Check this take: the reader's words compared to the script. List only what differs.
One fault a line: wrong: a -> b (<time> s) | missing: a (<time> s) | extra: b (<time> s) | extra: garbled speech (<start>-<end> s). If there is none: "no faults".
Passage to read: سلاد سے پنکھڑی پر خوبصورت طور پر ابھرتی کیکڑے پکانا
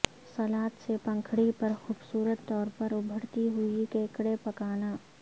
extra: ہوئی (3.5 s)